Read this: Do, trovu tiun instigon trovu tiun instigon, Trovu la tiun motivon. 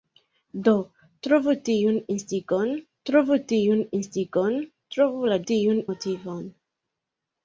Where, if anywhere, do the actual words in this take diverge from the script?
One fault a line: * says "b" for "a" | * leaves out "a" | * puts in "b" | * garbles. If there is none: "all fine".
all fine